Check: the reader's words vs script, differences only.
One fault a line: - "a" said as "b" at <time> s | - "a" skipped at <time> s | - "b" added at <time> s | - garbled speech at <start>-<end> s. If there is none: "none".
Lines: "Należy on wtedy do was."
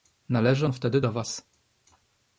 none